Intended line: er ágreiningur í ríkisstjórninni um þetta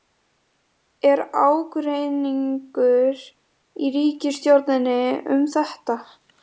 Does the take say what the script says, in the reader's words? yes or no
yes